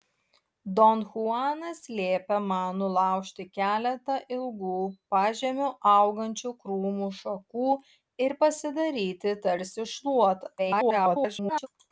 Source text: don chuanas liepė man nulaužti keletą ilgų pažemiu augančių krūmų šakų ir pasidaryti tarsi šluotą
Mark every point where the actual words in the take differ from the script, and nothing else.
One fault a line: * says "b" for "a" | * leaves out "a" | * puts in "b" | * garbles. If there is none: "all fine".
* garbles